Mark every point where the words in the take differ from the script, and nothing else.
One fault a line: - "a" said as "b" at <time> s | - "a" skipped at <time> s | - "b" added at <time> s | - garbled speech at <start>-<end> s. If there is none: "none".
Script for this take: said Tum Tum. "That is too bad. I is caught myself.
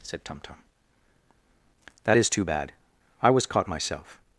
- "is" said as "was" at 3.3 s